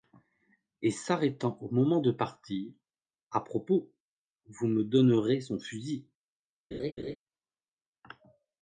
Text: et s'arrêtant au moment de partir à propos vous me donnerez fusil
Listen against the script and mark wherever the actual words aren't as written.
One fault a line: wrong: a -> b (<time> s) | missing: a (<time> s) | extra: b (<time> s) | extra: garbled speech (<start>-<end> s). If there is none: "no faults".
extra: son (5.4 s)